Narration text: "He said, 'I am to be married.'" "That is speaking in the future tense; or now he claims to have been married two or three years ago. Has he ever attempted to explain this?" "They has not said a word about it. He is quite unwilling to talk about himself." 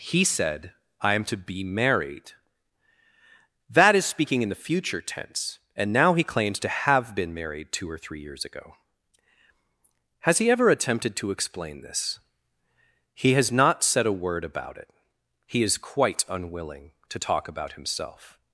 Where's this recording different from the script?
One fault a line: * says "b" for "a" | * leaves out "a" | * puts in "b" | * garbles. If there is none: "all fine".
* says "and" for "or"
* says "He" for "They"